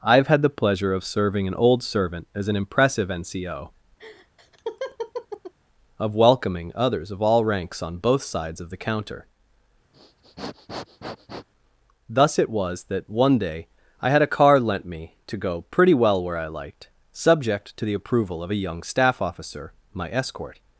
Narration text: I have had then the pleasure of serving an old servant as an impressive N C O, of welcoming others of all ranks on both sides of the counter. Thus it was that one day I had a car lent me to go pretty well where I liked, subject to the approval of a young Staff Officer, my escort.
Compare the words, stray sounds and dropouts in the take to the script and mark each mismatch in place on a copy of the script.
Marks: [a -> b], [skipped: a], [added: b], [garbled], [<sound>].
I have had [skipped: then] the pleasure of serving an old servant as an impressive N C O, [laugh] of welcoming others of all ranks on both sides of the counter. [sniff] Thus it was that one day I had a car lent me to go pretty well where I liked, subject to the approval of a young Staff Officer, my escort.